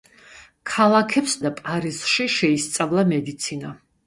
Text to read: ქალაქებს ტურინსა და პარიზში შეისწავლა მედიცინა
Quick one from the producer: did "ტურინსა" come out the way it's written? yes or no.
no